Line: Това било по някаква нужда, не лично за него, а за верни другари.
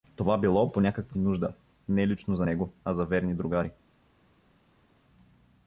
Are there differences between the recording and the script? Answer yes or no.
no